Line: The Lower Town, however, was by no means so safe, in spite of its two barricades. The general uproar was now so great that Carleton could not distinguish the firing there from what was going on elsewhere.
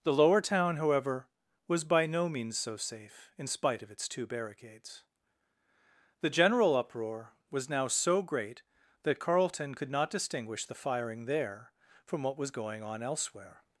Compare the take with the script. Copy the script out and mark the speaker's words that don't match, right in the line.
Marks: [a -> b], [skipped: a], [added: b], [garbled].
The Lower Town, however, was by no means so safe, in spite of its two barricades. The general uproar was now so great that Carleton could not distinguish the firing there from what was going on elsewhere.